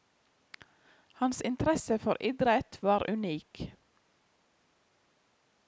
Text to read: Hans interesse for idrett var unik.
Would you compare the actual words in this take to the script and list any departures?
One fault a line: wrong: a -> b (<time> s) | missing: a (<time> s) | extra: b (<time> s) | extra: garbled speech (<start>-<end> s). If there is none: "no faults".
no faults